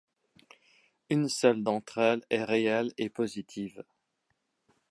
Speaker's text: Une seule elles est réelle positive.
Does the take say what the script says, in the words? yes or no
no